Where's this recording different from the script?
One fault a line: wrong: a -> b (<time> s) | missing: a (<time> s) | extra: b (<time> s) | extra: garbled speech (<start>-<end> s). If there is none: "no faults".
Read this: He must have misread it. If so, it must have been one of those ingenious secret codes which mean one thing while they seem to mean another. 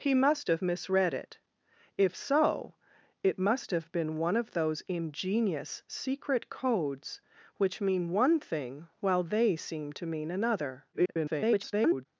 extra: garbled speech (10.9-12.1 s)